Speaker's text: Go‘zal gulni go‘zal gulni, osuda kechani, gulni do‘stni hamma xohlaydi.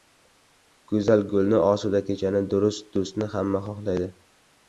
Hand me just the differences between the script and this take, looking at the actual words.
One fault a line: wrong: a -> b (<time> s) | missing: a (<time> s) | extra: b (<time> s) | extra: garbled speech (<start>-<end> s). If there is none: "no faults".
missing: go‘zal gulni (1.6 s)
wrong: gulni -> durust (2.5 s)